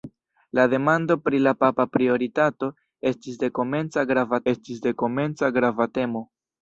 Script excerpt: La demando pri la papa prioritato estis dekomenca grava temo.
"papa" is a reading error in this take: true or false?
false